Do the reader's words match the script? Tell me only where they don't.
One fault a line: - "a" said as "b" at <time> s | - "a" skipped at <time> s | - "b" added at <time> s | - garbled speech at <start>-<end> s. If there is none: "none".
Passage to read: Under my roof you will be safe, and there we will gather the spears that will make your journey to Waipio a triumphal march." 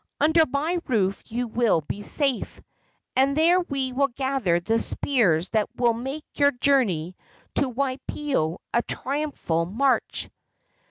none